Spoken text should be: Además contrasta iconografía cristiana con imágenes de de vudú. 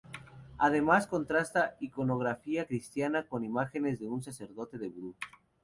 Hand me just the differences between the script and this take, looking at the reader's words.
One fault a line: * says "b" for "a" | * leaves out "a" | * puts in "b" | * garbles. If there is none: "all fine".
* puts in "un sacerdote"